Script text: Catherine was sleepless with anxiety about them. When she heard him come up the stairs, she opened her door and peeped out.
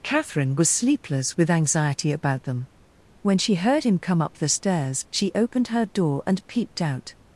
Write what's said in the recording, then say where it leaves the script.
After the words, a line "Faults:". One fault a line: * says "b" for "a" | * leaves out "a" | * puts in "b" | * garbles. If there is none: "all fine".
Catherine was sleepless with anxiety about them. When she heard him come up the stairs, she opened her door and peeped out.
Faults:
all fine